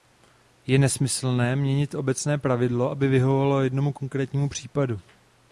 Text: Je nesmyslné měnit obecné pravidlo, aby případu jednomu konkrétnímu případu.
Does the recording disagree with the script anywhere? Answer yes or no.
yes